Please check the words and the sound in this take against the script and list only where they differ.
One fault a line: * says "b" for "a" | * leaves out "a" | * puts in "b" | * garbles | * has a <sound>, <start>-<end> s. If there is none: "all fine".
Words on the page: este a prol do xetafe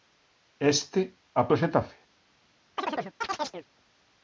* leaves out "prol"
* has a chirp, 2.8-3.7 s